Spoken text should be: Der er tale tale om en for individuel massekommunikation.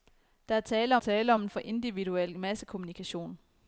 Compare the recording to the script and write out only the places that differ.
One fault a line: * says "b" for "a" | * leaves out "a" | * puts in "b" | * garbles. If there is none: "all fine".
all fine